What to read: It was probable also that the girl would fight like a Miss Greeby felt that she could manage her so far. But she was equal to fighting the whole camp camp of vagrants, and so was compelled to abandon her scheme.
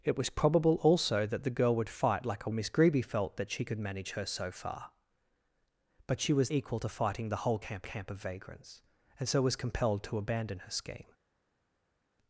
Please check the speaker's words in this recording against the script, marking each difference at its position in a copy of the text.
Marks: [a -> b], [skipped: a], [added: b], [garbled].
It was probable also that the girl would fight like a Miss Greeby felt that she could manage her so far. But she was equal to fighting the whole camp camp of vagrants, and so was compelled to abandon her scheme.